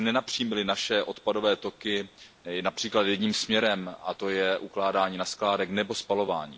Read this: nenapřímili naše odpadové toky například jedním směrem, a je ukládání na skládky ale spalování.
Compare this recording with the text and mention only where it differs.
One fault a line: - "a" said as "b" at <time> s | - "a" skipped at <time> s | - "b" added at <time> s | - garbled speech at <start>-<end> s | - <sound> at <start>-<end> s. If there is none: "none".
- "to" added at 4.1 s
- "ale" said as "nebo" at 5.7 s